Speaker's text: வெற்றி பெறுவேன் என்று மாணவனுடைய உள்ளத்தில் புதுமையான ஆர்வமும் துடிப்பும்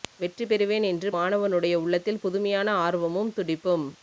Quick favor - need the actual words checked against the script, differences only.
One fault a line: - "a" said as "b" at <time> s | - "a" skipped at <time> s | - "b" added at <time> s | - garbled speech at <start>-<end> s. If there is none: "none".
none